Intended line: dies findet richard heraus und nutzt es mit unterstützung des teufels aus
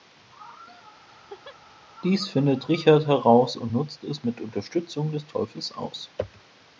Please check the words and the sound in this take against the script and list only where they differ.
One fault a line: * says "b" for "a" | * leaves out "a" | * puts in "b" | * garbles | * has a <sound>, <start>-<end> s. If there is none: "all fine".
* has a laugh, 1.1-1.6 s